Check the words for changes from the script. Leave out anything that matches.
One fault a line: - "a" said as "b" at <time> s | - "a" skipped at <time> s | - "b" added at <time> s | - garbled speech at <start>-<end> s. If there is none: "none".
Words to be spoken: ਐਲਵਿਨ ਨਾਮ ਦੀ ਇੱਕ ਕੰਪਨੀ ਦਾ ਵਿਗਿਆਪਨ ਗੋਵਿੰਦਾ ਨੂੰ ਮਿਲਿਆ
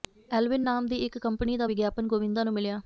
none